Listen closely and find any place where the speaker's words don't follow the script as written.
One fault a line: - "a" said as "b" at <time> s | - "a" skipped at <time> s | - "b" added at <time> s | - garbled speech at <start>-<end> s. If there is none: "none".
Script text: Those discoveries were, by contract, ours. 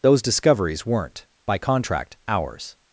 - "were" said as "weren't" at 0.9 s